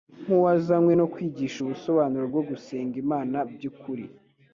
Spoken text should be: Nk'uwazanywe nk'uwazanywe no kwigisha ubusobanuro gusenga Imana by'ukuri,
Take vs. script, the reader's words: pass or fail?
fail